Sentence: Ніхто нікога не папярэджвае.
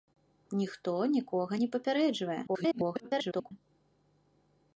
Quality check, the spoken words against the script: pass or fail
fail